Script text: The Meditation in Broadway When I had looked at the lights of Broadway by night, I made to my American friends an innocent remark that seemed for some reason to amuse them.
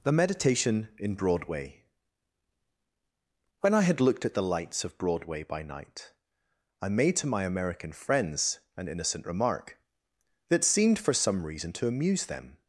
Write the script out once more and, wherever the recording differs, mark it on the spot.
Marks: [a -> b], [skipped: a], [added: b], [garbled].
The Meditation in Broadway When I had looked at the lights of Broadway by night, I made to my American friends an innocent remark that seemed for some reason to amuse them.